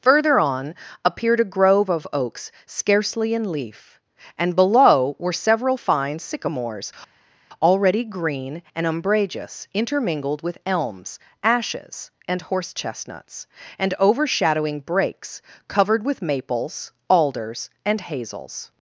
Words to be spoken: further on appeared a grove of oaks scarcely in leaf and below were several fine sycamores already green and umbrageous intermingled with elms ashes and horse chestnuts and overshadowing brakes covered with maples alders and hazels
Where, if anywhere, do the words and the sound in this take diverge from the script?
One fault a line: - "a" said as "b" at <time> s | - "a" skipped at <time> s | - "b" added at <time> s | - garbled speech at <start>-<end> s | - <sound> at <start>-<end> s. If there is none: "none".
none